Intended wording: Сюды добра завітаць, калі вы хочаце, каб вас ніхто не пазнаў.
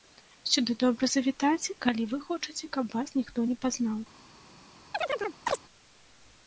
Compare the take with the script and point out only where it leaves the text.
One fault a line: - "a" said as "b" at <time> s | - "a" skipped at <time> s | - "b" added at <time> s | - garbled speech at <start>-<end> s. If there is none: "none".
none